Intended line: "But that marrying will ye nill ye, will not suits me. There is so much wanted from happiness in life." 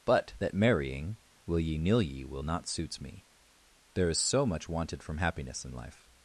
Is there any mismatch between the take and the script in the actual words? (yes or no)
no